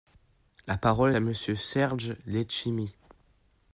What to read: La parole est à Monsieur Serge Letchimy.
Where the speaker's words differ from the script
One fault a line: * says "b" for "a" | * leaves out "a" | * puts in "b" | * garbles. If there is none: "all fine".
* leaves out "est"